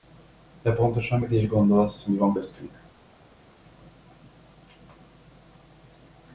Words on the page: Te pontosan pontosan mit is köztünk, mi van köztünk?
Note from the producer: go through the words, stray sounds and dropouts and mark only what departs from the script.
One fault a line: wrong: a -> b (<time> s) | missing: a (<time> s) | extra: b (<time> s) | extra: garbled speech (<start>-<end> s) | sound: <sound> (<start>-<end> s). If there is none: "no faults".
missing: pontosan (1.2 s)
wrong: köztünk -> gondolsz (1.5 s)